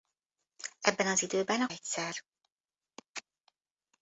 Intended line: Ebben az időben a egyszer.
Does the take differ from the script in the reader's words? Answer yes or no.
no